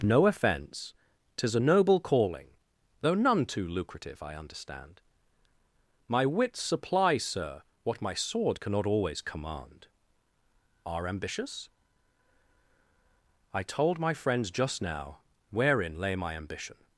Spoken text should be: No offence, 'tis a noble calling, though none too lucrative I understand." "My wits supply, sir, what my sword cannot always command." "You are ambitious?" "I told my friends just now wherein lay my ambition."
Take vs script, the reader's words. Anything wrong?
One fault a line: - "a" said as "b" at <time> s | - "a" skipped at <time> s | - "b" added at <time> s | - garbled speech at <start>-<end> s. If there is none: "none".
- "You" skipped at 9.9 s